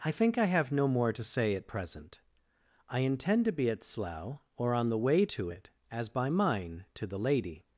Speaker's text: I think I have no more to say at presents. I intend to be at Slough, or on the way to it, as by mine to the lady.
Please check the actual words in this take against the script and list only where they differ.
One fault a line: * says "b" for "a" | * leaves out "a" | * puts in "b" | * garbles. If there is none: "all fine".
* says "present" for "presents"